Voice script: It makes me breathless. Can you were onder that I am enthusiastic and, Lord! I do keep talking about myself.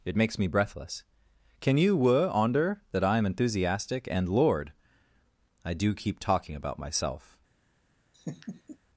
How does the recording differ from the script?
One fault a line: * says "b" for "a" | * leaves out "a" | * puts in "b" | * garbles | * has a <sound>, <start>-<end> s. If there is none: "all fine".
* has a laugh, 8.1-8.8 s